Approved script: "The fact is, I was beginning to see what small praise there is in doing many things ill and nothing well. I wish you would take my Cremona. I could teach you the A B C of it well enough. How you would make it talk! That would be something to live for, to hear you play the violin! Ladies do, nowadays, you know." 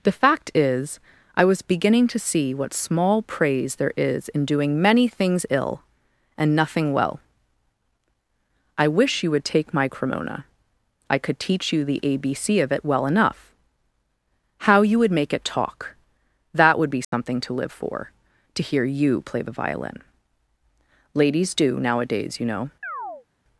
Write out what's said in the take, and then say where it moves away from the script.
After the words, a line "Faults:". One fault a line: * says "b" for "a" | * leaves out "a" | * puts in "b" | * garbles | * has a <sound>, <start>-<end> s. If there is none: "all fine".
"The fact is, I was beginning to see what small praise there is in doing many things ill and nothing well. I wish you would take my Cremona. I could teach you the A B C of it well enough. How you would make it talk! That would be something to live for, to hear you play the violin! Ladies do, nowadays, you know."
Faults:
* has a dropout, 17.0-17.1 s
* has a chirp, 22.8-23.3 s